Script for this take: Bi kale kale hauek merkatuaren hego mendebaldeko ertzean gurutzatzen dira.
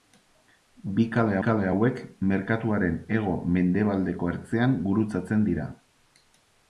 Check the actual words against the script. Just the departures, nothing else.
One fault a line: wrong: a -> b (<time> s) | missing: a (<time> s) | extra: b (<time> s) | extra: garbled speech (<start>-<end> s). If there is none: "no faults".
no faults